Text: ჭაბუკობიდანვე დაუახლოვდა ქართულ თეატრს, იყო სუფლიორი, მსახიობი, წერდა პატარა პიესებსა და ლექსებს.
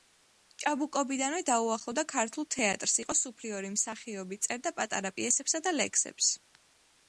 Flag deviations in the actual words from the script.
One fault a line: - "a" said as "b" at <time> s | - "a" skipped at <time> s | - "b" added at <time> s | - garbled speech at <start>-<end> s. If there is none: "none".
none